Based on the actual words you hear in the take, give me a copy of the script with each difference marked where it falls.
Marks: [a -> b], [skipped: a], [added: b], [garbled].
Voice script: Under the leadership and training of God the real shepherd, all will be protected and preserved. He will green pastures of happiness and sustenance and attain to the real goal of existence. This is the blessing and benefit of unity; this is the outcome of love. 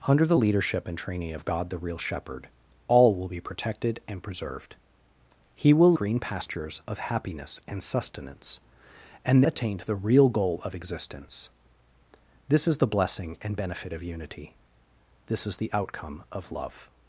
Under the leadership and training of God the real shepherd, all will be protected and preserved. He will green pastures of happiness and sustenance and attain to the real goal of existence. This is the blessing and benefit of unity; this is the outcome of love.